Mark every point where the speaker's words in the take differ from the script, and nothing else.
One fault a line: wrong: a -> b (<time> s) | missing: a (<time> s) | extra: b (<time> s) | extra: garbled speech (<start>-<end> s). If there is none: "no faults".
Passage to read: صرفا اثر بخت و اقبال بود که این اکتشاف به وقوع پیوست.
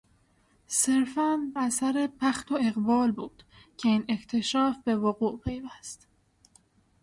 no faults